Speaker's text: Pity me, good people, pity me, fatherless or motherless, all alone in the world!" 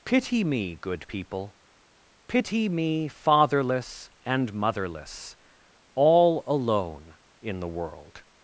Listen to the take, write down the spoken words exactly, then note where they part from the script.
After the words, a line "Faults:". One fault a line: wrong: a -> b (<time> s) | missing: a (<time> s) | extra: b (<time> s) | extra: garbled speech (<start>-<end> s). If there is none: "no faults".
Pity me, good people, pity me, fatherless and motherless, all alone in the world!"
Faults:
wrong: or -> and (4.2 s)